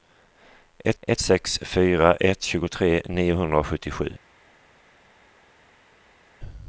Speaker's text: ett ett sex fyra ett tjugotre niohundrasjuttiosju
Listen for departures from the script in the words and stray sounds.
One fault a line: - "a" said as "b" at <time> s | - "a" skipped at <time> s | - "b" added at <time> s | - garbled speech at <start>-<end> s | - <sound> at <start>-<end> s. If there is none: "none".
none